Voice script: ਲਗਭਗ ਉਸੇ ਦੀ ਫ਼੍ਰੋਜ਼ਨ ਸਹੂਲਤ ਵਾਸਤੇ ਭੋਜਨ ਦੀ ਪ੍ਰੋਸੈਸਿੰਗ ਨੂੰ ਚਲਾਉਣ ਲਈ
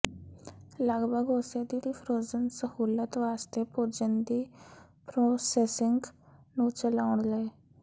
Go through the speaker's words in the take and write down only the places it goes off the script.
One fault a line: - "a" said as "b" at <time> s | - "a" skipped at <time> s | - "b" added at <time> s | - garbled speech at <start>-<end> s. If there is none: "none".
- "ਦੀ" added at 1.8 s